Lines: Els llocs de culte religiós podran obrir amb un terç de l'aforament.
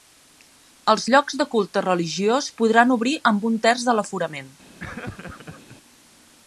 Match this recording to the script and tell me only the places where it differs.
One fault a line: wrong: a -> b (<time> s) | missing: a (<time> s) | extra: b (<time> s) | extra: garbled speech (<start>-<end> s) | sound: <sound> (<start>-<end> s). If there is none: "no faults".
sound: laugh (4.8-5.8 s)